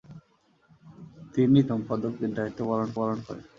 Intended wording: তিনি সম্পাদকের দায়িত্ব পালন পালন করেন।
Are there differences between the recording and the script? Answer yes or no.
no